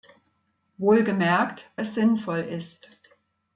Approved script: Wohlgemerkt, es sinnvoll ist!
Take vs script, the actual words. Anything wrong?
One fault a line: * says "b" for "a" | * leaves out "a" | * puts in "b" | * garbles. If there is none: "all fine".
all fine